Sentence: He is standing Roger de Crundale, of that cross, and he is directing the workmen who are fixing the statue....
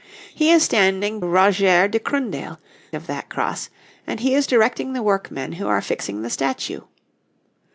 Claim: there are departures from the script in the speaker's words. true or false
false